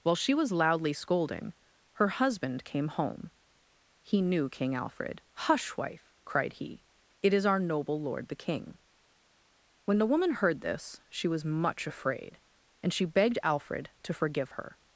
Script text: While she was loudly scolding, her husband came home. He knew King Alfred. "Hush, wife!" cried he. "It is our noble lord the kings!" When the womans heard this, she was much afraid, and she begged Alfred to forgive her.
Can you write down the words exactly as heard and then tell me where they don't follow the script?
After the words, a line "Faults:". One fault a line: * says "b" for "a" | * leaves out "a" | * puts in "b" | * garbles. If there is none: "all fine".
While she was loudly scolding, her husband came home. He knew King Alfred. "Hush, wife!" cried he. "It is our noble lord the king!" When the woman heard this, she was much afraid, and she begged Alfred to forgive her.
Faults:
* says "king" for "kings"
* says "woman" for "womans"